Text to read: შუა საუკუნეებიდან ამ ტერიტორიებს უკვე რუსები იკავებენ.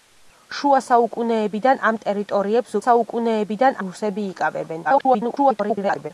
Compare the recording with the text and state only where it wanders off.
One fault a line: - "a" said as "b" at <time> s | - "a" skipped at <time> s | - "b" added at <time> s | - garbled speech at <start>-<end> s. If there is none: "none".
- "უკვე" said as "საუკუნეებიდან" at 2.8 s
- garbled speech at 4.8-6.1 s